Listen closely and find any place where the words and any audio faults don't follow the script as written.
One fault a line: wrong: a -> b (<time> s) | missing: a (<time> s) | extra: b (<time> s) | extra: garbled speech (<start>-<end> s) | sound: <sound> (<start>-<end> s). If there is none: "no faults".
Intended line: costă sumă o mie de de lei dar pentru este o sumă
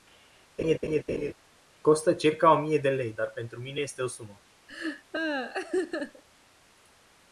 sound: laugh (0.6-1.3 s)
wrong: sumă -> circa (2.1 s)
missing: de (2.9 s)
extra: mine (3.6 s)
sound: laugh (4.7-6.2 s)